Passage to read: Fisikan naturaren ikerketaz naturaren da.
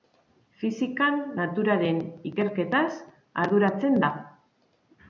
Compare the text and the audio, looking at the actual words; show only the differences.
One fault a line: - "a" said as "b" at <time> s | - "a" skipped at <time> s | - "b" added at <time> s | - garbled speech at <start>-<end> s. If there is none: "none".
- "naturaren" said as "arduratzen" at 3.5 s